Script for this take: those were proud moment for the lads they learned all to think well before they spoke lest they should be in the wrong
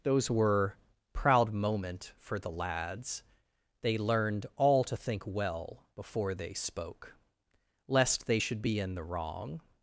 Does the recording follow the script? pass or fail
pass